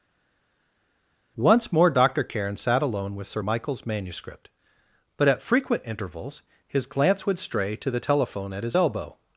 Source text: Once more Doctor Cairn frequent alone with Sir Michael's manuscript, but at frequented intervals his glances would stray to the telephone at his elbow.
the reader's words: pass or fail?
fail